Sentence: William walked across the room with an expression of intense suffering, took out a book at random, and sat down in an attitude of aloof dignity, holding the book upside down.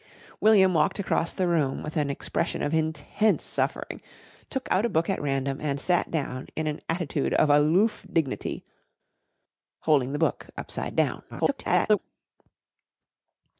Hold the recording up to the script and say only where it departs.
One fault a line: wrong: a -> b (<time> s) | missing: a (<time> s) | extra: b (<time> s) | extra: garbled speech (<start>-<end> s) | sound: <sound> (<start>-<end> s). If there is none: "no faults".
extra: garbled speech (11.3-12.0 s)